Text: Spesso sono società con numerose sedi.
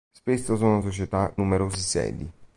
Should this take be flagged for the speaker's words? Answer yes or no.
yes